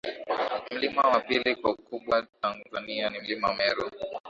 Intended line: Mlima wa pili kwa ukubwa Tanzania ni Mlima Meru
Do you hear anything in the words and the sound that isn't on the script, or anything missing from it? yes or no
no